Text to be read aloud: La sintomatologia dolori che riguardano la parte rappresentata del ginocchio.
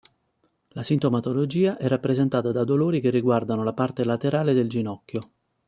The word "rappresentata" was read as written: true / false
false